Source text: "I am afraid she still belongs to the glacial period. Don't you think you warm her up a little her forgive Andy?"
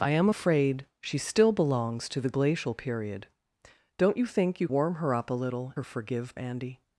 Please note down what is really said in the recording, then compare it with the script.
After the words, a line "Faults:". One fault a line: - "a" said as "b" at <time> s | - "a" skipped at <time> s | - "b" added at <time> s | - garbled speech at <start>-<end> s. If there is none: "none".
"I am afraid she still belongs to the glacial period. Don't you think you warm her up a little her forgive Andy?"
Faults:
none